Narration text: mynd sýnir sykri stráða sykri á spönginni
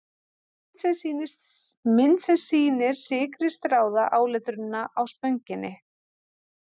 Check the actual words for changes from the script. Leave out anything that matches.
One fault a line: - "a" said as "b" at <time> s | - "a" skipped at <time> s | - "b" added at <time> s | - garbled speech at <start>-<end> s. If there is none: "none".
- "sem" added at 2.3 s
- "sykri" said as "áletrunina" at 4.2 s